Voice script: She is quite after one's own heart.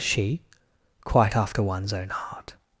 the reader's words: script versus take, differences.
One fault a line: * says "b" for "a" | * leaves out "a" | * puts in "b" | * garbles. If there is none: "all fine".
* leaves out "is"